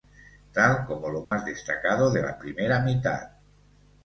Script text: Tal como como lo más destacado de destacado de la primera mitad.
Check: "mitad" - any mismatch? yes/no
no